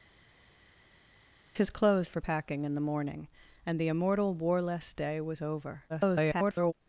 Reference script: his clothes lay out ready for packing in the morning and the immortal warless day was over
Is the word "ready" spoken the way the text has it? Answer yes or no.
no